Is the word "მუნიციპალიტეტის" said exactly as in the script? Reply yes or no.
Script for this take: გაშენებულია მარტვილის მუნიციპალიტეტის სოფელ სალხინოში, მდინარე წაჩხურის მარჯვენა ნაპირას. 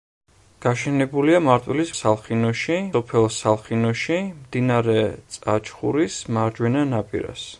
no